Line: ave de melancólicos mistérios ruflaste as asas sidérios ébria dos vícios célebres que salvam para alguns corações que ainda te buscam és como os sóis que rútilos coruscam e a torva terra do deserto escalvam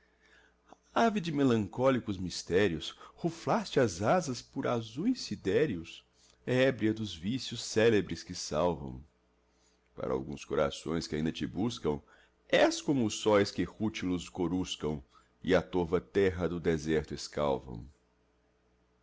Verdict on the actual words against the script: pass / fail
fail